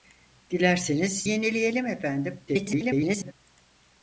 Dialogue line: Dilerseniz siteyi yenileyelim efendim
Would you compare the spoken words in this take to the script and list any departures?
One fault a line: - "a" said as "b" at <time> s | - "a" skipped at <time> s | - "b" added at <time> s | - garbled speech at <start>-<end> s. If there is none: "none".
- "siteyi" skipped at 1.3 s
- garbled speech at 2.5-3.3 s